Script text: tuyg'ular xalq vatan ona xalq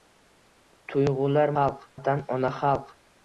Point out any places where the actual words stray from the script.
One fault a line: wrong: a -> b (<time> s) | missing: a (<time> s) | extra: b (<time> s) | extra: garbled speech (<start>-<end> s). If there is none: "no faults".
no faults